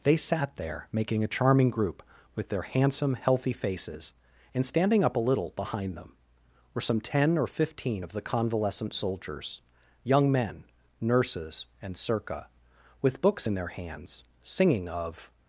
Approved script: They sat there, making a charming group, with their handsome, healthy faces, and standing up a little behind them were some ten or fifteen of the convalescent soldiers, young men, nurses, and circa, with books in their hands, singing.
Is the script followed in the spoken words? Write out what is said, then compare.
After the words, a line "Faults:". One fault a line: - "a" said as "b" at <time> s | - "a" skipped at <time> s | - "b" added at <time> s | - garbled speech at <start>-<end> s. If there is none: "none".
They sat there, making a charming group, with their handsome, healthy faces, and standing up a little behind them were some ten or fifteen of the convalescent soldiers, young men, nurses, and circa, with books in their hands, singing. Of
Faults:
- "Of" added at 14.9 s